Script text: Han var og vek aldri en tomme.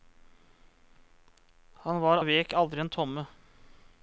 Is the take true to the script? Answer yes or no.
yes